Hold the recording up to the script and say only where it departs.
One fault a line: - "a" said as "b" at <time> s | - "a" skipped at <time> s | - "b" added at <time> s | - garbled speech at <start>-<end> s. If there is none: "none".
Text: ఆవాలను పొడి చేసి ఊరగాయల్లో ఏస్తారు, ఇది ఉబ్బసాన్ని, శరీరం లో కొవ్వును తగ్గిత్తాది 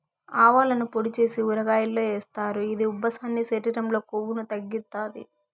none